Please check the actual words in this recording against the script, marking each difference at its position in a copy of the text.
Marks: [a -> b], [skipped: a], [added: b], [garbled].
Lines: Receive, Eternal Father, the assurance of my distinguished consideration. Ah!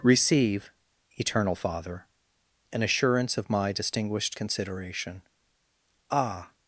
Receive, Eternal Father, [the -> an] assurance of my distinguished consideration. Ah!